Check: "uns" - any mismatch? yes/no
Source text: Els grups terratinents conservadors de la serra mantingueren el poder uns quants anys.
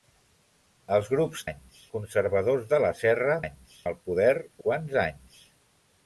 yes